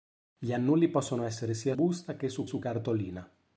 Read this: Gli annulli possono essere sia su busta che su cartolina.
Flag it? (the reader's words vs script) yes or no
yes